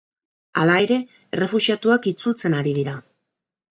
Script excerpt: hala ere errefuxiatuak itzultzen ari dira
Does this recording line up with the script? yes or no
yes